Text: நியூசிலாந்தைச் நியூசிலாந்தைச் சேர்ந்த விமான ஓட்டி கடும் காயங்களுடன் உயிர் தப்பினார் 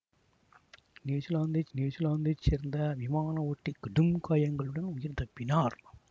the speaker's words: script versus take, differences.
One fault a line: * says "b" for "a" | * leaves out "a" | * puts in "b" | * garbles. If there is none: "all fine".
all fine